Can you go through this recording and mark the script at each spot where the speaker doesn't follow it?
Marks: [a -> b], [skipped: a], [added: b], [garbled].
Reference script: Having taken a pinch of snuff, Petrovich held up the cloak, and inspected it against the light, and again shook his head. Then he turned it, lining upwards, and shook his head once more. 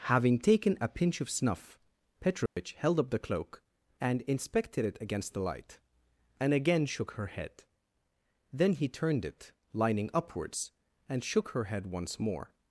Having taken a pinch of snuff, Petrovich held up the cloak, and inspected it against the light, and again shook [his -> her] head. Then he turned it, lining upwards, and shook [his -> her] head once more.